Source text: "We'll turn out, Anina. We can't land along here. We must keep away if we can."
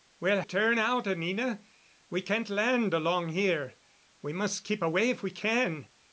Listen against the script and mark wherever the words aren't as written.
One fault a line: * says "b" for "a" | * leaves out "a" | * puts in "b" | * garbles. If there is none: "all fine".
all fine